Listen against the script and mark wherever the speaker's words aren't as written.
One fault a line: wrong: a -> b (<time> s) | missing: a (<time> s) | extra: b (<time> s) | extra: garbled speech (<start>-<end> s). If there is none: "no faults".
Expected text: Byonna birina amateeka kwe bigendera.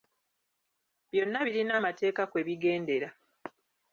no faults